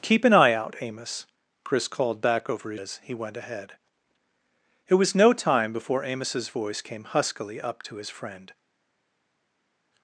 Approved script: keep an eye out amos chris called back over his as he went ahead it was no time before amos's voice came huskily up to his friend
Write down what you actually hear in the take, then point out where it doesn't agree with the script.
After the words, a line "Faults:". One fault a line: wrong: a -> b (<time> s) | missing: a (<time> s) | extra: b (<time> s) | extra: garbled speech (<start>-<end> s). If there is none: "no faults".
keep an eye out amos chris called back over his as he went ahead it was no time before amos's voice came huskily up to his friend
Faults:
no faults